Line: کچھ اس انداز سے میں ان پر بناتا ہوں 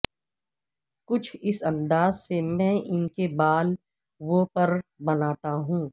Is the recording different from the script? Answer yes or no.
yes